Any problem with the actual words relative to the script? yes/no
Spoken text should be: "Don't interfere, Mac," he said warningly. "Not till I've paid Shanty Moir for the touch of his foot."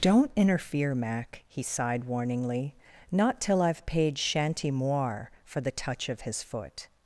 yes